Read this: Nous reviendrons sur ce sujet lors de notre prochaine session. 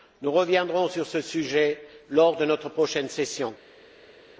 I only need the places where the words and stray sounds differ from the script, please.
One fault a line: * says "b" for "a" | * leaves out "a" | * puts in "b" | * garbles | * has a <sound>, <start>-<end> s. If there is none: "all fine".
all fine